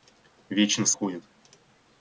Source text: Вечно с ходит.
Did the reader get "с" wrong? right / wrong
right